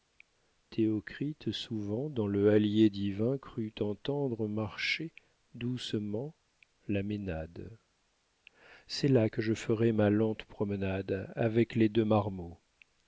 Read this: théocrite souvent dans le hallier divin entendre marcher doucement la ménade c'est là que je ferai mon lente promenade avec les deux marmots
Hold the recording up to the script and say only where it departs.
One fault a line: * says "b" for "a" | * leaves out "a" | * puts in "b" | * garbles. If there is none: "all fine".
* puts in "crut"
* says "ma" for "mon"